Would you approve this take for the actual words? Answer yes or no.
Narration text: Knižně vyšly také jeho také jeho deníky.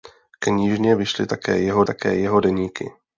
yes